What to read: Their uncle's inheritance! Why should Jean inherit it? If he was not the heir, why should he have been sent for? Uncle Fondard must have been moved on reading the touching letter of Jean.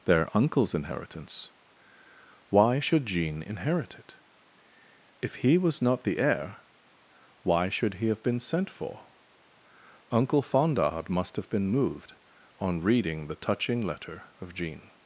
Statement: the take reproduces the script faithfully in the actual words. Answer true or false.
true